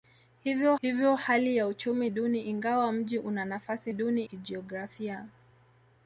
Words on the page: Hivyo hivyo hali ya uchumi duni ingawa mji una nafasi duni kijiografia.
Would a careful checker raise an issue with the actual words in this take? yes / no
no